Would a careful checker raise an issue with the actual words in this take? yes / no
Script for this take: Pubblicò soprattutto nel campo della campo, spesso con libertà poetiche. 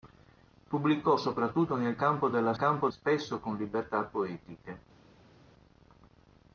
no